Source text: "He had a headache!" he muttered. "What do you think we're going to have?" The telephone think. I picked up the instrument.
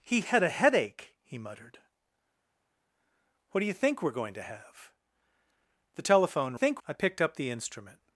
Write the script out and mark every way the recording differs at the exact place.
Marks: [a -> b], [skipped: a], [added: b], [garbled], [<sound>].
"He had a headache!" he muttered. "What do you think we're going to have?" The telephone think. I picked up the instrument.